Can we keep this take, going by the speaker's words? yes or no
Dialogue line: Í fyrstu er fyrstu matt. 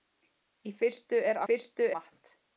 yes